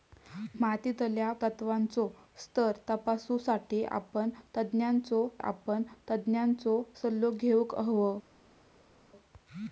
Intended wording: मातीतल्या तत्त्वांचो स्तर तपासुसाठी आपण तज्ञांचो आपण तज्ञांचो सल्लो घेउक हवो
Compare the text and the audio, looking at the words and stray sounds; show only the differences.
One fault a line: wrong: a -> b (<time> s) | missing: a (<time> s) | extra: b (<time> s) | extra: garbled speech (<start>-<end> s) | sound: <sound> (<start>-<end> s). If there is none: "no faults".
no faults